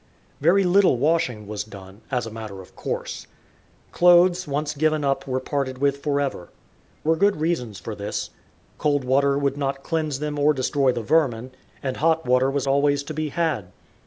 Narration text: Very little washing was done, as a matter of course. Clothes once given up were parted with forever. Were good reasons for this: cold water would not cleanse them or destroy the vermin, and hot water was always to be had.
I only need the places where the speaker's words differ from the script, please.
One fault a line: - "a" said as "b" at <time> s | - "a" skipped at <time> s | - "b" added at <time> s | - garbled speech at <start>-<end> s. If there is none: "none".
none